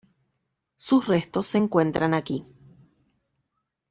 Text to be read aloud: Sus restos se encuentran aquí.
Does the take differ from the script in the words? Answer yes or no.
no